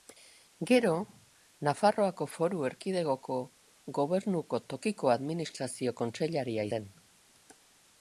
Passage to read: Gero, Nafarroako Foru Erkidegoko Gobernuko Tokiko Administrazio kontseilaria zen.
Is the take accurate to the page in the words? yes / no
yes